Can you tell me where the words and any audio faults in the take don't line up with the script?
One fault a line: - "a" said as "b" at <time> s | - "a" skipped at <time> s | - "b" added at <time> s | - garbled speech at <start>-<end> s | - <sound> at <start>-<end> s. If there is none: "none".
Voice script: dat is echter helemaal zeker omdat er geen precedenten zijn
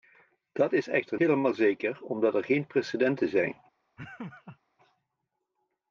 - laugh at 4.0-4.6 s